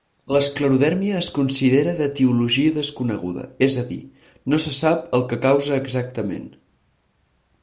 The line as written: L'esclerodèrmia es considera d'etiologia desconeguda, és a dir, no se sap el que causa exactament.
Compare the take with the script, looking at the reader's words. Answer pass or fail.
pass